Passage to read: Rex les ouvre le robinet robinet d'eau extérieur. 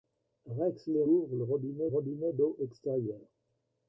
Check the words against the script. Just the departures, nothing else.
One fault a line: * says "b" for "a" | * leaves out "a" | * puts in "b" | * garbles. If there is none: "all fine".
all fine